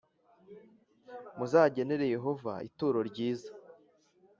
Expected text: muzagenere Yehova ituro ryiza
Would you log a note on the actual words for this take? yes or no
no